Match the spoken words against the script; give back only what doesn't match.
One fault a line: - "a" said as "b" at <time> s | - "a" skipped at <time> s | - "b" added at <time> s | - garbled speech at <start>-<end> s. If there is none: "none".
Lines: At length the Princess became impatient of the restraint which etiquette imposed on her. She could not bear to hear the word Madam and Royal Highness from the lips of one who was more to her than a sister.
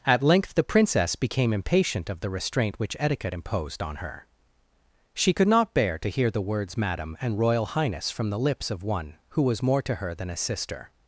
- "word" said as "words" at 6.4 s